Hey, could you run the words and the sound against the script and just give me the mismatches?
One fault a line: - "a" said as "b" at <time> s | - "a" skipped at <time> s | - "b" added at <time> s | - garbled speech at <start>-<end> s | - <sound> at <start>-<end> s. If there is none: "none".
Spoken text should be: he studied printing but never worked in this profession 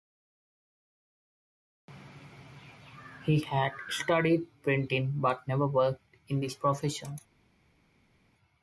- "had" added at 3.4 s